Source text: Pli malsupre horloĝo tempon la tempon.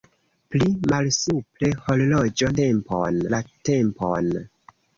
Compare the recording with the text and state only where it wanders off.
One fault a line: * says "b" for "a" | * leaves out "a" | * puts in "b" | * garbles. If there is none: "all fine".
all fine